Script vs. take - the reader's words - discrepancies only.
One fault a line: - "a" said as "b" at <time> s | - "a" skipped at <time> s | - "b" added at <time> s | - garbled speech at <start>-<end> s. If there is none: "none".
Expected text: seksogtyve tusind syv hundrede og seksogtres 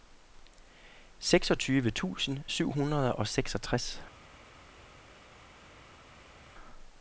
none